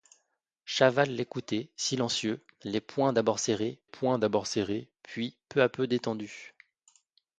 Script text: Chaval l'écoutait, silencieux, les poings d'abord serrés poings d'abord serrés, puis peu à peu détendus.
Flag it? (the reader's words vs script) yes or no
no